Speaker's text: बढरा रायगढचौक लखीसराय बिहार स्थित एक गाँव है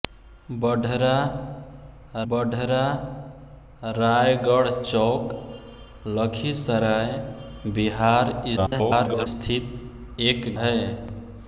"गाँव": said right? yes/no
no